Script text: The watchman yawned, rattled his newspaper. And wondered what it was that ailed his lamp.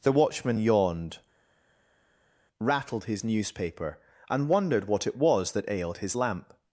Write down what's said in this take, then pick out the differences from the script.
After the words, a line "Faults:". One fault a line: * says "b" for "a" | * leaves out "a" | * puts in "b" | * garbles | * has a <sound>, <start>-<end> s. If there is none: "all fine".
The watchman yawned, rattled his newspaper. And wondered what it was that ailed his lamp.
Faults:
all fine